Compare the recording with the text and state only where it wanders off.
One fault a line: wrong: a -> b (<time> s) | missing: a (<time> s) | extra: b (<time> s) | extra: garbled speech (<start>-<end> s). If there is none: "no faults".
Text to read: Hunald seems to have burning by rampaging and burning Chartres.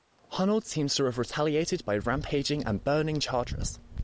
wrong: burning -> retaliated (1.2 s)